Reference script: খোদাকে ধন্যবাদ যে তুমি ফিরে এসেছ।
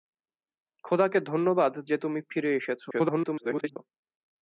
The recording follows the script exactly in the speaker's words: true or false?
false